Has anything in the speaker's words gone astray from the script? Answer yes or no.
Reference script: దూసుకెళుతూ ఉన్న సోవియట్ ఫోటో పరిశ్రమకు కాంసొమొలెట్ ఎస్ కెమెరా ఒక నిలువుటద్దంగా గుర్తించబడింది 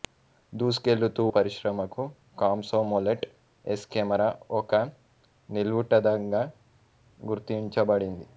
yes